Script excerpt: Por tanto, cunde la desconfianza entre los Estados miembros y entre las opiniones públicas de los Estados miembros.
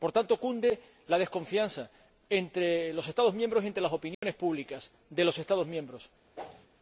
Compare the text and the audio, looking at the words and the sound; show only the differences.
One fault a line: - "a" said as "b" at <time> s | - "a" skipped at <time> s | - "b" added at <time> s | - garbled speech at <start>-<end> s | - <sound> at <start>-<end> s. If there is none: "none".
- dropout at 4.1-4.2 s
- whoosh at 6.3-6.7 s